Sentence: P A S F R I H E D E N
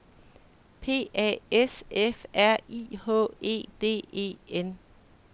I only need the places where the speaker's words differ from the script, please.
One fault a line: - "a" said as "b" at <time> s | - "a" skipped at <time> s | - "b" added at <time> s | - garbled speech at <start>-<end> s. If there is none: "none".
none